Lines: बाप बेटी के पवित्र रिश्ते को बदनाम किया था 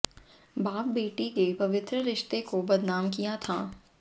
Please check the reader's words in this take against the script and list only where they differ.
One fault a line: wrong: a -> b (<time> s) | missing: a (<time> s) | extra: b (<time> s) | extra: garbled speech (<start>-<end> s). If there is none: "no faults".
no faults